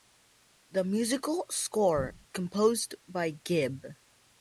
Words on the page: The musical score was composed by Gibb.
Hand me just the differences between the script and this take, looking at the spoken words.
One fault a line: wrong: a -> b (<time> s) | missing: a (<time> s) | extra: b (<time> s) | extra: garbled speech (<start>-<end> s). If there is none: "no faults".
missing: was (2.1 s)